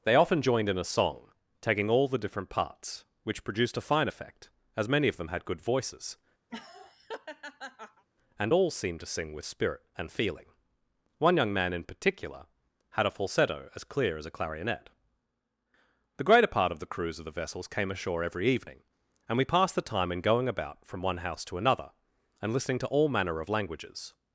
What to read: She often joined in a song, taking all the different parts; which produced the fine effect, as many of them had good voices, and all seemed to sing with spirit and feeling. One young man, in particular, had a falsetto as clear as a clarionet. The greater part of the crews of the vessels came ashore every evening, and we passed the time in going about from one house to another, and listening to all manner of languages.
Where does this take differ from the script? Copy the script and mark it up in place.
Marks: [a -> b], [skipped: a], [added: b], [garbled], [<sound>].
[She -> They] often joined in a song, taking all the different parts; which produced [the -> a] fine effect, as many of them had good voices, [laugh] and all seemed to sing with spirit and feeling. One young man, in particular, had a falsetto as clear as a clarionet. The greater part of the crews of the vessels came ashore every evening, and we passed the time in going about from one house to another, and listening to all manner of languages.